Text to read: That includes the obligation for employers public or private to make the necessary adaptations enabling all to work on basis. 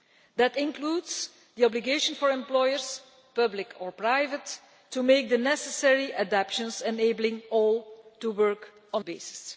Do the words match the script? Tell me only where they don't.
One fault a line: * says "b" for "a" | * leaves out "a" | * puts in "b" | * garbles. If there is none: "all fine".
all fine